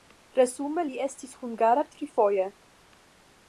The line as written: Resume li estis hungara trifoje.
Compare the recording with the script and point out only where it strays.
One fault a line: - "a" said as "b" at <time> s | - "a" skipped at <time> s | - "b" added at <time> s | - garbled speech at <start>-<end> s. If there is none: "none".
none